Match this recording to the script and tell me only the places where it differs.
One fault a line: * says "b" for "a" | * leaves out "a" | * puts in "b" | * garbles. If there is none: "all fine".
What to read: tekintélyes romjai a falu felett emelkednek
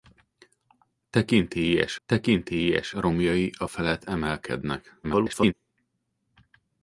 * puts in "tekintélyes"
* leaves out "falu"
* garbles